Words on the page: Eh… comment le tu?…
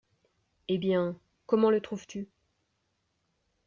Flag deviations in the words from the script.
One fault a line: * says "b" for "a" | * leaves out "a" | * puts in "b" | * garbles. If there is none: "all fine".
* puts in "bien"
* puts in "trouves"